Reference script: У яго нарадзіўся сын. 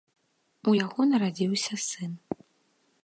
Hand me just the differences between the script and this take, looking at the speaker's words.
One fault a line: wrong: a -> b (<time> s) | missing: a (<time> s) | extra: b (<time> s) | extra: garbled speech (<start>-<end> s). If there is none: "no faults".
no faults